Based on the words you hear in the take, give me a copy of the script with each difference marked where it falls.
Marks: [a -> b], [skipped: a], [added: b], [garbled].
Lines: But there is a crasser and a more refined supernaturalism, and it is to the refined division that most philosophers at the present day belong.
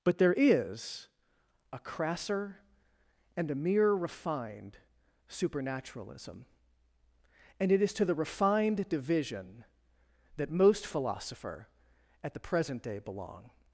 But there is a crasser and a [more -> mere] refined supernaturalism, and it is to the refined division that most [philosophers -> philosopher] at the present day belong.